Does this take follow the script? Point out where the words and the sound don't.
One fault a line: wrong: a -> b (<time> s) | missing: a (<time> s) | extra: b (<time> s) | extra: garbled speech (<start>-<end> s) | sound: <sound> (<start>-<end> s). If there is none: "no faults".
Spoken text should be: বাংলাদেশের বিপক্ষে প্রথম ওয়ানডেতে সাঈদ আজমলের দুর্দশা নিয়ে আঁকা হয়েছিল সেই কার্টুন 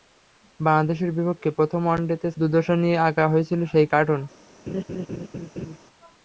missing: সাঈদ আজমলের (2.3 s)
sound: laugh (4.7-5.8 s)